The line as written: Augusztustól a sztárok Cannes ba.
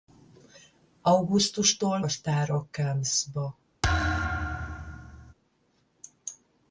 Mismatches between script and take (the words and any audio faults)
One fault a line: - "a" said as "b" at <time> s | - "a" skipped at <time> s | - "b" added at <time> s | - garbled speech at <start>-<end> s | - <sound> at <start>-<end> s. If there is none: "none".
- thud at 3.8-5.3 s